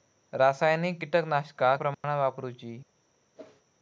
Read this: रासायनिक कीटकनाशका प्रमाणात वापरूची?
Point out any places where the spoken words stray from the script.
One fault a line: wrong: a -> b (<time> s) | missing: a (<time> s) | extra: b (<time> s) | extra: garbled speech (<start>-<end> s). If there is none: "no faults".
no faults